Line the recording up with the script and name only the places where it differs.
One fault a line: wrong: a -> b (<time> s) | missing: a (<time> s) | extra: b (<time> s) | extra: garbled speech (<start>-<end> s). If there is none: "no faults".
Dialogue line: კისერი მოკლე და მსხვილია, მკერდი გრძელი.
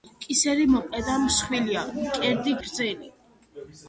no faults